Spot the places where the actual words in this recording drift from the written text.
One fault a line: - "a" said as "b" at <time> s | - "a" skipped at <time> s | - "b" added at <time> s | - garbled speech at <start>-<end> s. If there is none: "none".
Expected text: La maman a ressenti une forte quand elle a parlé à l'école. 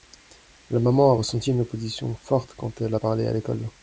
- "opposition" added at 1.6 s